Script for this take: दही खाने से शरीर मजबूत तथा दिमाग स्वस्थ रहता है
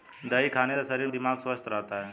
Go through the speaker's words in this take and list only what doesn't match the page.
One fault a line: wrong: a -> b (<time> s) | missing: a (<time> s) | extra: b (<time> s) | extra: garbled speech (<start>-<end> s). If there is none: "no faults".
missing: मजबूत तथा (1.1 s)